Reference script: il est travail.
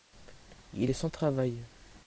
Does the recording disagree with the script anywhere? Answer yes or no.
yes